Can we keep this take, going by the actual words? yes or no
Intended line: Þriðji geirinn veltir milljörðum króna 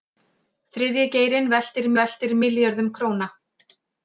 no